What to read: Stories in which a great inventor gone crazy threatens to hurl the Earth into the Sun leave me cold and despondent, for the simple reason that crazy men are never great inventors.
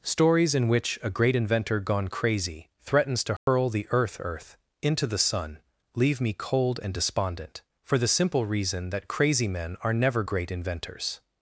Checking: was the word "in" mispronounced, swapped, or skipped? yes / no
no